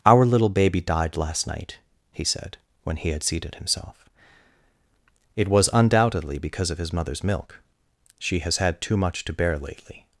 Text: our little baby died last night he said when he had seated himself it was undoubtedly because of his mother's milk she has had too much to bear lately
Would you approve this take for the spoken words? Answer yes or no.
yes